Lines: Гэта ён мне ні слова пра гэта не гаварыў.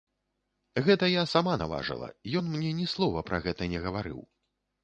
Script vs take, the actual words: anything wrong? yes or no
yes